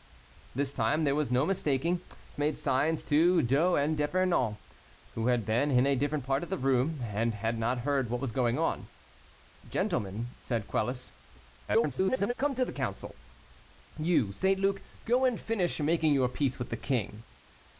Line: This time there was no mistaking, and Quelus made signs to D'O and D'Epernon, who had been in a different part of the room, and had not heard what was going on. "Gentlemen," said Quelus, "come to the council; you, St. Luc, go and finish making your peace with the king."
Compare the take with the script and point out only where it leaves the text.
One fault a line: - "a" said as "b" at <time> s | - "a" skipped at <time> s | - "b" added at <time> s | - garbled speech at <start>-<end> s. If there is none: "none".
- "and Quelus" skipped at 2.0 s
- garbled speech at 11.7-12.3 s